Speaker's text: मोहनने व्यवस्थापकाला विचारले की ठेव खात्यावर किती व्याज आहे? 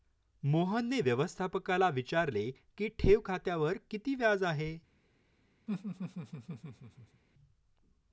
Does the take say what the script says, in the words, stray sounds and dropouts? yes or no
no